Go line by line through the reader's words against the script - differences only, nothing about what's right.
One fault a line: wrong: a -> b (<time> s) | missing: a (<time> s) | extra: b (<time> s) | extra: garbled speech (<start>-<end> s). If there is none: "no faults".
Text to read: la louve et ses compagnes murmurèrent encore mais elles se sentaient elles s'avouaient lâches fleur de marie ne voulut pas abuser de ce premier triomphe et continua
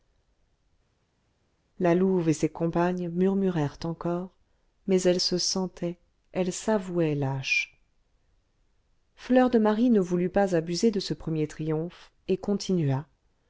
no faults